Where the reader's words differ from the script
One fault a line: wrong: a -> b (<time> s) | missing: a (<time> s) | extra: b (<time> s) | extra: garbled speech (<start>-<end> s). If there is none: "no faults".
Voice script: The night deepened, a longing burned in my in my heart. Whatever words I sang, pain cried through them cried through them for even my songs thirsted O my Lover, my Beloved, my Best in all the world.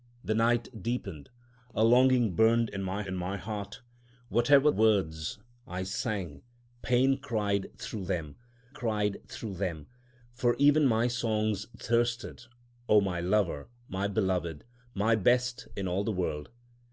no faults